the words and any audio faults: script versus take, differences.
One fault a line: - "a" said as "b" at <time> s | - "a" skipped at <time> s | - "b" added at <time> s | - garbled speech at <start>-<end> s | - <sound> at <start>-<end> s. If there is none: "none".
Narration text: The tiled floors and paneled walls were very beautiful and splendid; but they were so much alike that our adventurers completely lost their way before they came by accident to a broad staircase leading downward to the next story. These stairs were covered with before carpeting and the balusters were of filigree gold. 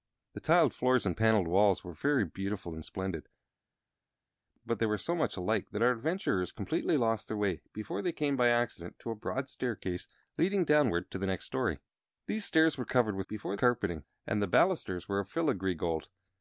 none